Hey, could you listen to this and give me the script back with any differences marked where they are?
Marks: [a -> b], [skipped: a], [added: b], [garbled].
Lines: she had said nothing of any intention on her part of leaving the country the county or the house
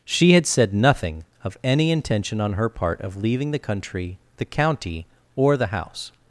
she had said nothing of any intention on her part of leaving the country the county or the house